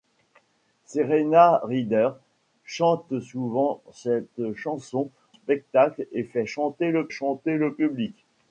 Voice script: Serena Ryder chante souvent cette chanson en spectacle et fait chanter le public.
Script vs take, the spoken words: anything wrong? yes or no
yes